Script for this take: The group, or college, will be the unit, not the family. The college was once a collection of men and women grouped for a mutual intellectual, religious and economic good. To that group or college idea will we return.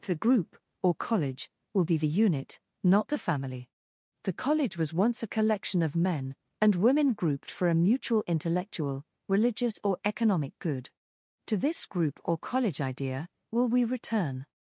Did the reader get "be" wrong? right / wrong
right